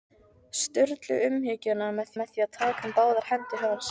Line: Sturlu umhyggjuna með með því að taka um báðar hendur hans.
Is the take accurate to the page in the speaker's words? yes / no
yes